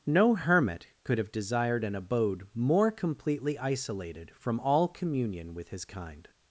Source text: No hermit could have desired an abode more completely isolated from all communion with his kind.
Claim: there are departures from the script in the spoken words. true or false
false